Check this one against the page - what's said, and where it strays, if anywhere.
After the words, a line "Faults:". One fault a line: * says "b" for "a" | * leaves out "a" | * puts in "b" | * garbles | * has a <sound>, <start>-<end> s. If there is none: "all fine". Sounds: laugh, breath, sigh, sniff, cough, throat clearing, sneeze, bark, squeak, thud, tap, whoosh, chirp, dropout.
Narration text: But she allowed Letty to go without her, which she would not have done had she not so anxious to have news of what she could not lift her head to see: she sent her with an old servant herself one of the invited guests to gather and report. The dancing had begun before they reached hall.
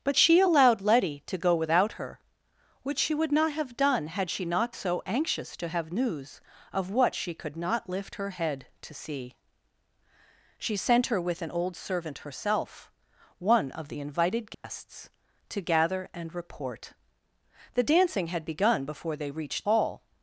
But she allowed Letty to go without her, which she would not have done had she not so anxious to have news of what she could not lift her head to see: she sent her with an old servant herself one of the invited guests to gather and report. The dancing had begun before they reached hall.
Faults:
* has a dropout, 14.5-14.6 s